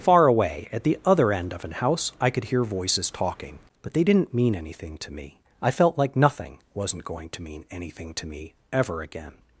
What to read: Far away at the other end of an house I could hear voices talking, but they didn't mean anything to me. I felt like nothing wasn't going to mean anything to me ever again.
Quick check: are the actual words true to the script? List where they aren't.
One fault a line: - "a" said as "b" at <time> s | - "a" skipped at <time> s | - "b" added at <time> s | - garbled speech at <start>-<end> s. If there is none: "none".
none